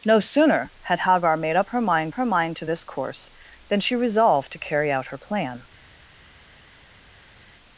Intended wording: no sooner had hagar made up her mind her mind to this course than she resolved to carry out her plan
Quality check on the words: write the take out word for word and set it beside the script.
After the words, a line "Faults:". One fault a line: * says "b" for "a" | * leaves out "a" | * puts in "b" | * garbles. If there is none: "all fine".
no sooner had hagar made up her mind her mind to this course than she resolved to carry out her plan
Faults:
all fine